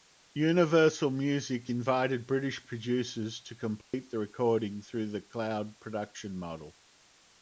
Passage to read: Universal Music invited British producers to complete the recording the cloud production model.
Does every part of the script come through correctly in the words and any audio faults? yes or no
no